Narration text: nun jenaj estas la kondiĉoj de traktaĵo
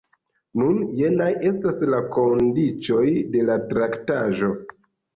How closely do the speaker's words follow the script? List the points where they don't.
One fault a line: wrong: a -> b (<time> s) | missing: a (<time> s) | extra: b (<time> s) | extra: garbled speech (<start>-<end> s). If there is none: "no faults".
extra: la (3.5 s)